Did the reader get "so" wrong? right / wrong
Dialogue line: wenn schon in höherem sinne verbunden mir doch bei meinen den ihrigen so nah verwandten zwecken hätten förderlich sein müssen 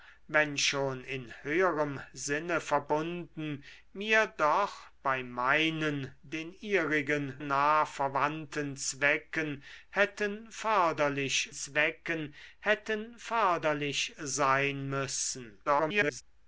wrong